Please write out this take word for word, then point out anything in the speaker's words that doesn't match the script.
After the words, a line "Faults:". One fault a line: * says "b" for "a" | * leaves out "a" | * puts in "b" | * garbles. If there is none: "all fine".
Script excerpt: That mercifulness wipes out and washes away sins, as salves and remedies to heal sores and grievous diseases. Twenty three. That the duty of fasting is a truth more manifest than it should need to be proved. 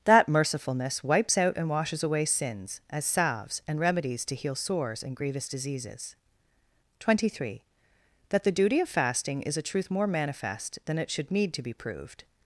That mercifulness wipes out and washes away sins, as salves and remedies to heal sores and grievous diseases. Twenty three. That the duty of fasting is a truth more manifest than it should need to be proved.
Faults:
all fine